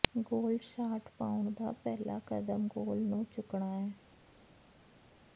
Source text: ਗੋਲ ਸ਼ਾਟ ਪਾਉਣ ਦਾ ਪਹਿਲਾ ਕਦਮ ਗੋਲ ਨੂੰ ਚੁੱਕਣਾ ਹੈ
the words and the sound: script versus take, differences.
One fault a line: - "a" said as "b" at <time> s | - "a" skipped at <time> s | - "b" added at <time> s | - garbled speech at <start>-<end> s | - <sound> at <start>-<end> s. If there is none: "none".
none